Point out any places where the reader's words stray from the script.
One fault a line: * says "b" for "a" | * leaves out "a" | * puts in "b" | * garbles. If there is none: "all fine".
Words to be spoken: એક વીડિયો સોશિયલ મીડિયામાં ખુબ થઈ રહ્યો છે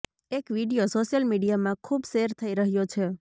* puts in "શેર"